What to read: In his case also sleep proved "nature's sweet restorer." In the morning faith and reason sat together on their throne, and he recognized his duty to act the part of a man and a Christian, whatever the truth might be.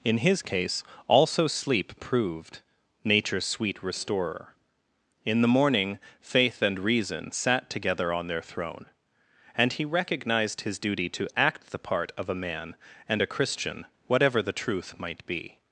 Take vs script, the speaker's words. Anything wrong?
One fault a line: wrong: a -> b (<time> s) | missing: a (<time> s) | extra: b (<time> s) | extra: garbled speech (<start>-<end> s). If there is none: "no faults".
no faults